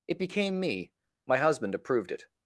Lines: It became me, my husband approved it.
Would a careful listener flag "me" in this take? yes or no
no